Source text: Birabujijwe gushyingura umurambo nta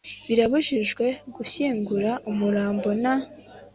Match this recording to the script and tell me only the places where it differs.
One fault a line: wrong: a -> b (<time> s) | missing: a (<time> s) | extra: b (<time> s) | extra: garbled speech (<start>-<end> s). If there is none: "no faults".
no faults